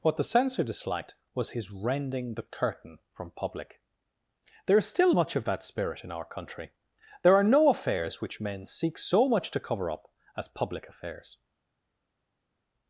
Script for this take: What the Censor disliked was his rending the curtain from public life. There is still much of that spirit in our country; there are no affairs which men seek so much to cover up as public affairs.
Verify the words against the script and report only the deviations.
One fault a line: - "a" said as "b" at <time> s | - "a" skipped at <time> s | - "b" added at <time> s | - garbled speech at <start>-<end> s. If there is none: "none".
- "life" skipped at 3.8 s